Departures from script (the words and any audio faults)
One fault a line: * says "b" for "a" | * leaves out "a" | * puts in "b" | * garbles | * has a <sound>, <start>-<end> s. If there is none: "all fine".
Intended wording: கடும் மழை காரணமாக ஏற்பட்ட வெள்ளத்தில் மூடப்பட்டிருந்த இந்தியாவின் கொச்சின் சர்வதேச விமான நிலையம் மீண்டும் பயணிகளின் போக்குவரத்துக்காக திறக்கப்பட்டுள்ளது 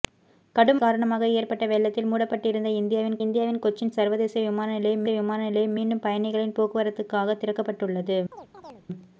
* leaves out "மழை"
* puts in "இந்தியாவின்"
* puts in "விமான நிலையம்"
* has a chirp, 8.3-8.9 s